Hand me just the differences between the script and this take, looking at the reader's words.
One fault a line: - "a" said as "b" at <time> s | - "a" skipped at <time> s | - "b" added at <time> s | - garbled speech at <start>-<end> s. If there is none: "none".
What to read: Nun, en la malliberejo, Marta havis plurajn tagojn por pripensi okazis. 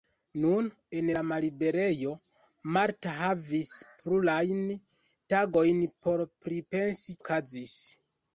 none